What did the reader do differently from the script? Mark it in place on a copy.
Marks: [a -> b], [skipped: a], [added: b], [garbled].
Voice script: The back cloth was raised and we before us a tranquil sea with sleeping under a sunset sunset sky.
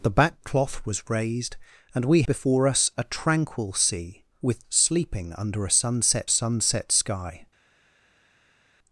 The back cloth was raised and we before us a tranquil sea with sleeping under a sunset sunset sky.